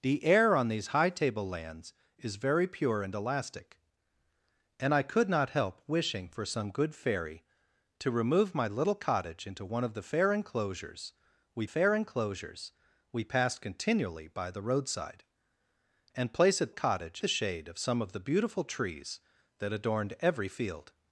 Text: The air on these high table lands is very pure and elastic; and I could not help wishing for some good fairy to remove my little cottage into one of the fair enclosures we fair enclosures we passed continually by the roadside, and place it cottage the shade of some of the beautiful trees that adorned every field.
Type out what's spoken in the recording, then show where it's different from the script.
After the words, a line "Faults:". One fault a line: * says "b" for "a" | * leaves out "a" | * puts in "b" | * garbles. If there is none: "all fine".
The air on these high table lands is very pure and elastic; and I could not help wishing for some good fairy to remove my little cottage into one of the fair enclosures we fair enclosures we passed continually by the roadside, and place it cottage the shade of some of the beautiful trees that adorned every field.
Faults:
all fine